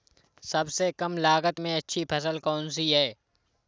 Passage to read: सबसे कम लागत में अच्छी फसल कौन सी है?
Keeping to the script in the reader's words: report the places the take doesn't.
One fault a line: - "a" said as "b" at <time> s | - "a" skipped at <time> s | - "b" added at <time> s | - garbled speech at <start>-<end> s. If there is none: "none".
none